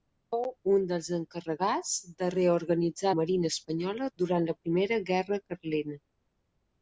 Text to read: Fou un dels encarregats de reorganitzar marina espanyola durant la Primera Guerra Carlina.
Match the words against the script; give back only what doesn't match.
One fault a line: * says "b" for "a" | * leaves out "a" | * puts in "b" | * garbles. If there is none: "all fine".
all fine